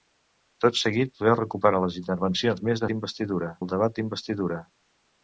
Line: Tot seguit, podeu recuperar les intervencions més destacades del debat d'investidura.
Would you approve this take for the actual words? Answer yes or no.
no